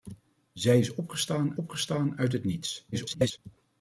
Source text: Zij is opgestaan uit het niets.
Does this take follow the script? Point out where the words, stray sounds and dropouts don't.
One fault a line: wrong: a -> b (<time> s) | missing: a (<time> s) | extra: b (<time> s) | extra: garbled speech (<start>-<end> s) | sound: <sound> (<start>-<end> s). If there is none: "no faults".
extra: opgestaan (1.5 s)
extra: garbled speech (2.9-3.4 s)